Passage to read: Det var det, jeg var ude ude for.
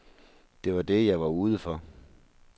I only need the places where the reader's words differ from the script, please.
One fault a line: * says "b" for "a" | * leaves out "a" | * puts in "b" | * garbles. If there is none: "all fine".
* leaves out "ude"